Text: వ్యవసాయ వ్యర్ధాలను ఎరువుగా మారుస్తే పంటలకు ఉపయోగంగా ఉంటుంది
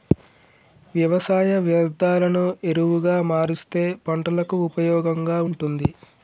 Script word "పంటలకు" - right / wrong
right